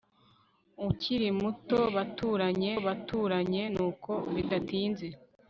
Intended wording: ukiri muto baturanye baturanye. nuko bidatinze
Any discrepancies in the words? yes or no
no